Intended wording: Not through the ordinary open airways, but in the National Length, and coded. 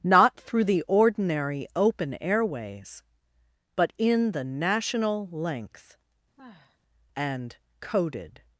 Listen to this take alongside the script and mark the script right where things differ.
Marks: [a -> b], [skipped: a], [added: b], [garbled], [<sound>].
Not through the ordinary open airways, but in the National Length, [sigh] and coded.